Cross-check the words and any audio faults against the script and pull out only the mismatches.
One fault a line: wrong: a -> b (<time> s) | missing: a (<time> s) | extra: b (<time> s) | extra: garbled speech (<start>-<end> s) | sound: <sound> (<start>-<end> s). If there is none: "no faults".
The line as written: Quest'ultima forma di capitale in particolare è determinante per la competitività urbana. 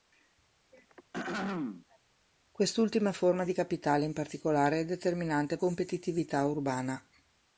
sound: throat clearing (0.7-2.0 s)
missing: per la (5.6 s)